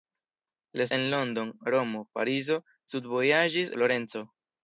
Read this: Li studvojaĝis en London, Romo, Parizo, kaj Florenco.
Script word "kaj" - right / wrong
wrong